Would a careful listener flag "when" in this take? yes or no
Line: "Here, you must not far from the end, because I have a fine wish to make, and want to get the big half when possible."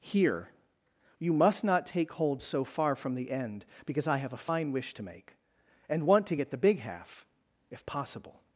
yes